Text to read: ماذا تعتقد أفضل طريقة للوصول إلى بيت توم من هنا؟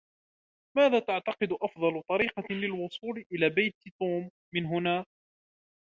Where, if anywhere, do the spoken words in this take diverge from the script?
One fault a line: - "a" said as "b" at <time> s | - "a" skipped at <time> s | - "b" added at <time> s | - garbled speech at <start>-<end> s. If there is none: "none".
none